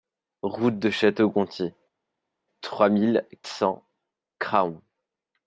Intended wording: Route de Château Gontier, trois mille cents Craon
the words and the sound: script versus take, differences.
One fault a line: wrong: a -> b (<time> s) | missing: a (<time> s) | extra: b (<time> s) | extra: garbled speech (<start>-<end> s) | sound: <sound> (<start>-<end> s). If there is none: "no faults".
no faults